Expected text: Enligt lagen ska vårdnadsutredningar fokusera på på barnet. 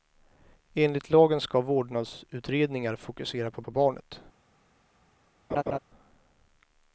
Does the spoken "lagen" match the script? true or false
true